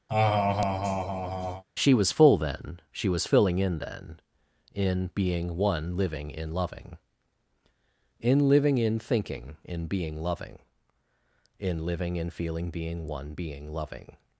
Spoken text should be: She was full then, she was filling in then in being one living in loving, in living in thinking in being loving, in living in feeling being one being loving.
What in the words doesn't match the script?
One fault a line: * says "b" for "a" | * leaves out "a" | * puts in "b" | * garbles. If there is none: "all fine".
all fine